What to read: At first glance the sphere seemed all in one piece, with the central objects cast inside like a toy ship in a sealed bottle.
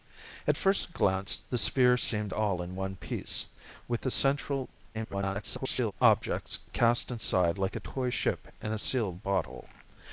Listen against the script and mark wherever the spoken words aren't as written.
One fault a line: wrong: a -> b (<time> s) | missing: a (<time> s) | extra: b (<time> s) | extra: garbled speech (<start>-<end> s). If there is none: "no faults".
extra: garbled speech (4.9-5.9 s)